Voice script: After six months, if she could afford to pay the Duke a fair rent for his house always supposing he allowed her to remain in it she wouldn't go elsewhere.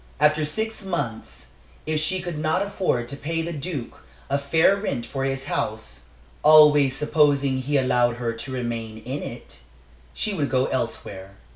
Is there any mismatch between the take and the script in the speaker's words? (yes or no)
yes